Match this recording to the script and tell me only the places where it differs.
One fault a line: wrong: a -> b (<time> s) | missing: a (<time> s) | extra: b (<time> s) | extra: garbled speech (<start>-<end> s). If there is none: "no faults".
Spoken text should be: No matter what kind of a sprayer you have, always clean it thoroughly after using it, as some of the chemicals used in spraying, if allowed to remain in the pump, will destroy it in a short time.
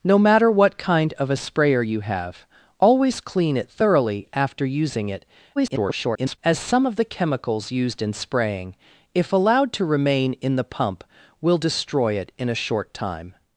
extra: garbled speech (5.6-6.4 s)